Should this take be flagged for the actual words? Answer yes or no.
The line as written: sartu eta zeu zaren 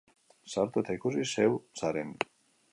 yes